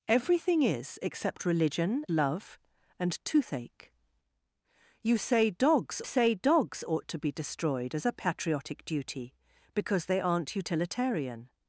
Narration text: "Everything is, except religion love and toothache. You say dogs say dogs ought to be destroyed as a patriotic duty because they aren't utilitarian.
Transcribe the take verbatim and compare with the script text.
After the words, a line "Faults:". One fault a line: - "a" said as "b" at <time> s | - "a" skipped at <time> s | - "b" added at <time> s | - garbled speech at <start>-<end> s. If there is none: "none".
"Everything is, except religion love and toothache. You say dogs say dogs ought to be destroyed as a patriotic duty because they aren't utilitarian.
Faults:
none